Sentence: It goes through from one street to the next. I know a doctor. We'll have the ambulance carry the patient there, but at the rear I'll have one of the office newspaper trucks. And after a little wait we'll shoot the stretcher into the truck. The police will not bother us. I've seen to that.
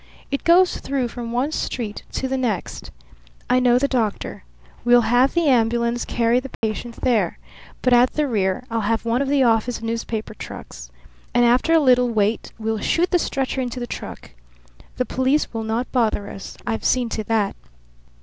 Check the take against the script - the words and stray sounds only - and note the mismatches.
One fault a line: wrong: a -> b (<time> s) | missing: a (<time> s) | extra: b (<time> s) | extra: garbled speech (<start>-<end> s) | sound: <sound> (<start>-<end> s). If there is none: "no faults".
wrong: a -> the (3.8 s)
sound: dropout (6.5-6.6 s)